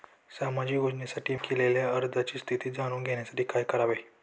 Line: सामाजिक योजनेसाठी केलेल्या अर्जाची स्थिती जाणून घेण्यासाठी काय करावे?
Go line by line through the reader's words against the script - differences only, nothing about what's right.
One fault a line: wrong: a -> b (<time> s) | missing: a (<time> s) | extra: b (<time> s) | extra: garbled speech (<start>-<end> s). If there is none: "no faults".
no faults